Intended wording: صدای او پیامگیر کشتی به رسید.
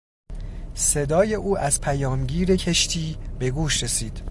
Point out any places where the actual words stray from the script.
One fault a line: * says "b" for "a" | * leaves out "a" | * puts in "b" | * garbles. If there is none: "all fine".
* puts in "از"
* puts in "گوش"